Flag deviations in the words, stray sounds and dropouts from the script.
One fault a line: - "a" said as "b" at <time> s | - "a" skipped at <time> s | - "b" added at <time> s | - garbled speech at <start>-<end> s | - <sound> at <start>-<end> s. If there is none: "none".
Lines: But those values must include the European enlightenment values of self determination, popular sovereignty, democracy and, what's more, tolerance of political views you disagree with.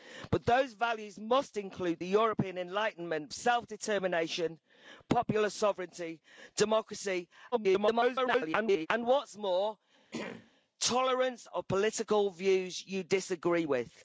- "values of" skipped at 3.3 s
- garbled speech at 7.5-8.9 s
- throat clearing at 10.1-10.5 s